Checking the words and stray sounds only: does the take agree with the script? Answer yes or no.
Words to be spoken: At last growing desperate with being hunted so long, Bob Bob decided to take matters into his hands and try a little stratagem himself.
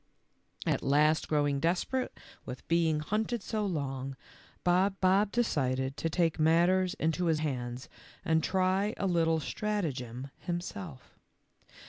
yes